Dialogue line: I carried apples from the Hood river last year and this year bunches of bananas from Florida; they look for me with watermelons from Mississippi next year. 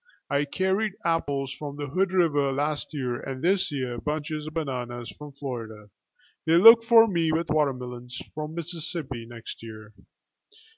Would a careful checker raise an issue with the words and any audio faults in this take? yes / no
no